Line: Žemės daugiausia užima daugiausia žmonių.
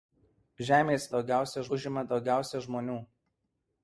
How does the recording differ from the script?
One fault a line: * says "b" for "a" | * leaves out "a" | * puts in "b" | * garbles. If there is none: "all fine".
all fine